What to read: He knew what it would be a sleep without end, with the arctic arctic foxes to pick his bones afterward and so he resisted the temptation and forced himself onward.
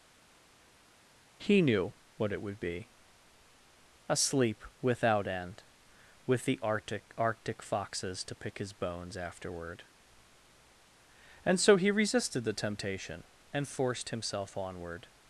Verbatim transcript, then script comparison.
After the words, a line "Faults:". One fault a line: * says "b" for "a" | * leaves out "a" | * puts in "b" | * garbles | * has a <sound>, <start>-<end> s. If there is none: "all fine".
He knew what it would be a sleep without end, with the arctic arctic foxes to pick his bones afterward and so he resisted the temptation and forced himself onward.
Faults:
all fine